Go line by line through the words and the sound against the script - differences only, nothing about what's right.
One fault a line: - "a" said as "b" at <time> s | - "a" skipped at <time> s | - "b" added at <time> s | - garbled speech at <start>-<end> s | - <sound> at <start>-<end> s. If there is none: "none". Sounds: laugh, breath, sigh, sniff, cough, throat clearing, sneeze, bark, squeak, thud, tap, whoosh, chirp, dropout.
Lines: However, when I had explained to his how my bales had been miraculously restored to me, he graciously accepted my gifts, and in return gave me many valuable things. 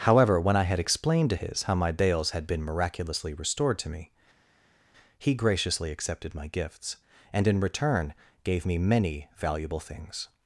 none